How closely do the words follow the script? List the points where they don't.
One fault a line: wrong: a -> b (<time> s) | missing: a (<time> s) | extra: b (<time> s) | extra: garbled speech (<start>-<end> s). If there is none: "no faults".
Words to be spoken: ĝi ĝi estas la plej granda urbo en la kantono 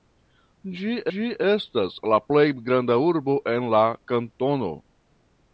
no faults